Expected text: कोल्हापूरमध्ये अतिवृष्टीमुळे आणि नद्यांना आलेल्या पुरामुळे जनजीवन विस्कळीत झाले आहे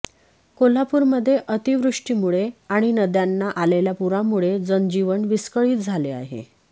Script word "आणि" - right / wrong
right